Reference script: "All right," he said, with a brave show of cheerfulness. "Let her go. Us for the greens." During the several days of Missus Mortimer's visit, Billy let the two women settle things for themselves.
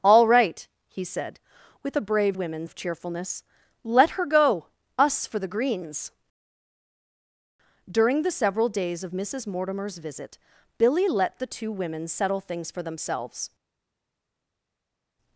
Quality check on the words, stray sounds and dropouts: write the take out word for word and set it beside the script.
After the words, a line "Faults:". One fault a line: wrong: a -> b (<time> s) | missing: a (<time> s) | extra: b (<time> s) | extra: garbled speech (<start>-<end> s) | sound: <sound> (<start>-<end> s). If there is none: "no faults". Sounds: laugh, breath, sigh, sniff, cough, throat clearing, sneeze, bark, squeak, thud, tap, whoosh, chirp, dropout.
"All right," he said, with a brave women of cheerfulness. "Let her go. Us for the greens." During the several days of Missus Mortimer's visit, Billy let the two women settle things for themselves.
Faults:
wrong: show -> women (2.3 s)